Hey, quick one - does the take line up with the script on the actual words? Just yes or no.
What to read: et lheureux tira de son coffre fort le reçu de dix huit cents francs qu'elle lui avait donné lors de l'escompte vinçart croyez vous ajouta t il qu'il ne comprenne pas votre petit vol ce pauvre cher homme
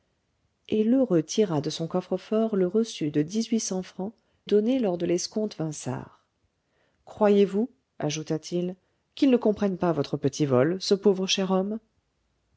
no